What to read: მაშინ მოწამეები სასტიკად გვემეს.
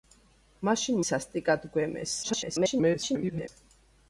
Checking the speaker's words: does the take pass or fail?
fail